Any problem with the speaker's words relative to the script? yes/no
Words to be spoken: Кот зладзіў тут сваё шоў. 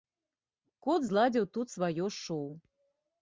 no